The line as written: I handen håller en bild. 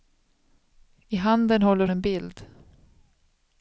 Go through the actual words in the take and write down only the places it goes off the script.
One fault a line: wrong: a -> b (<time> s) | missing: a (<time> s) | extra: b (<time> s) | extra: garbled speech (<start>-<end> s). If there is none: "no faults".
no faults